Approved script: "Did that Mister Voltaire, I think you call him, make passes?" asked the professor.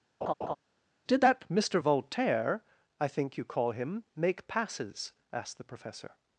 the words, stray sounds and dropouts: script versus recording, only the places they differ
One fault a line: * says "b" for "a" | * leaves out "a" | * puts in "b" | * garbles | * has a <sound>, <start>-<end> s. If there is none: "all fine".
* has a laugh, 0.2-0.6 s